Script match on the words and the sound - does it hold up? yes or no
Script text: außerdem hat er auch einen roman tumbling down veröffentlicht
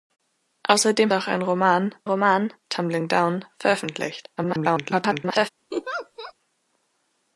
no